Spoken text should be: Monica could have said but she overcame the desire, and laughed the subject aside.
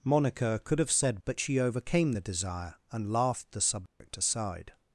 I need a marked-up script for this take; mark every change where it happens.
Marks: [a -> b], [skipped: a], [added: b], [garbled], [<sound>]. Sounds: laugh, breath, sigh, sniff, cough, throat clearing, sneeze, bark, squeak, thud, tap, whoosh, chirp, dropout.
Monica could have said but she overcame the desire, and laughed the subject [dropout] aside.